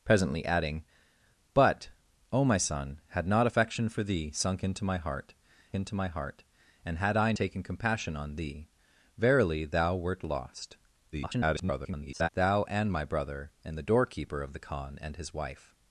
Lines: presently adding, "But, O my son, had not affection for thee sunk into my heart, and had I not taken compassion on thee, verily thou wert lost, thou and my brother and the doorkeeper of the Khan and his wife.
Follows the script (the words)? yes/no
no